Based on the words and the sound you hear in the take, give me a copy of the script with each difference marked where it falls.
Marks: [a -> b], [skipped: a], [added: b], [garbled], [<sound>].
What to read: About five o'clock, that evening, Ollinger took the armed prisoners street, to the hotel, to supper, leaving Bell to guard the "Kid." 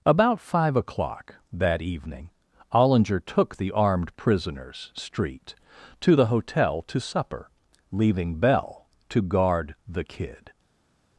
About five o'clock, that evening, Ollinger took the armed prisoners street, to the hotel, to supper, leaving Bell to guard the "Kid."